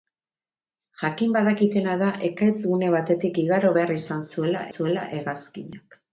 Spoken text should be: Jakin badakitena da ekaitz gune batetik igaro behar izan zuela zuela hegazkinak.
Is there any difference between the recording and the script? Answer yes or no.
no